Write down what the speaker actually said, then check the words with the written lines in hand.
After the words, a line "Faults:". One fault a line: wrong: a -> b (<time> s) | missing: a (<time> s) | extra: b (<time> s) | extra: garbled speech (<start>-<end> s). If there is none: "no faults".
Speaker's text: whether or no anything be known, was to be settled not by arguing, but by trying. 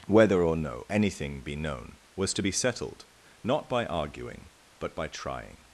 whether or no anything be known, was to be settled not by arguing, but by trying.
Faults:
no faults